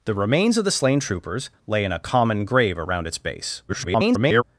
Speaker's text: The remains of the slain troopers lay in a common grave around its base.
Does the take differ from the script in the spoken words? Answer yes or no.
yes